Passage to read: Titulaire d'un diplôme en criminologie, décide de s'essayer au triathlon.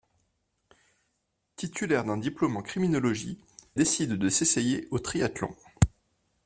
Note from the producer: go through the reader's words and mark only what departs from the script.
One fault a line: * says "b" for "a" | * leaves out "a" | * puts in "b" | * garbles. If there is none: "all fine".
all fine